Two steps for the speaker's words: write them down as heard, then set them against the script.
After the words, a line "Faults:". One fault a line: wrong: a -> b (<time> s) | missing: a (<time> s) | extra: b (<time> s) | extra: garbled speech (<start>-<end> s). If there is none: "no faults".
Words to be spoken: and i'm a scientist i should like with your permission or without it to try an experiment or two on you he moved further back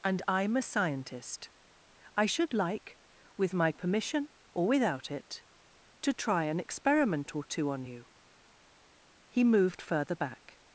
and i'm a scientist i should like with my permission or without it to try an experiment or two on you he moved further back
Faults:
wrong: your -> my (3.5 s)